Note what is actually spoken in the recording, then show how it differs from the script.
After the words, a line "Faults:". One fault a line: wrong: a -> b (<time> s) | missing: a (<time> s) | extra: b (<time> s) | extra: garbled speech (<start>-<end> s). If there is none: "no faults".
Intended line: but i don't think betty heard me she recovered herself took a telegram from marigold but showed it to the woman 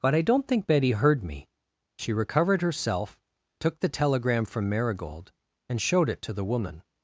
but i don't think betty heard me she recovered herself took the telegram from marigold and showed it to the woman
Faults:
wrong: a -> the (3.8 s)
wrong: but -> and (5.7 s)